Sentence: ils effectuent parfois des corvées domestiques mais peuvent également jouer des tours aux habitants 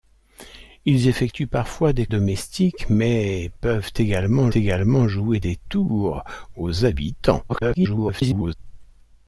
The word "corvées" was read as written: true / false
false